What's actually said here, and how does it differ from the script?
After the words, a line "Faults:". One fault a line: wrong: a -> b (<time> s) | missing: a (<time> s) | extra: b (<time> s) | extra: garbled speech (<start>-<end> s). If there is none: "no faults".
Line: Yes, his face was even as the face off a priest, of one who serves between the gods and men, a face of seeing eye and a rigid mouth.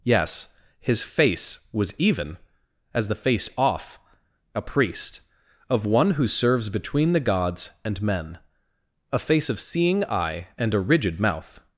Yes, his face was even as the face off a priest, of one who serves between the gods and men, a face of seeing eye and a rigid mouth.
Faults:
no faults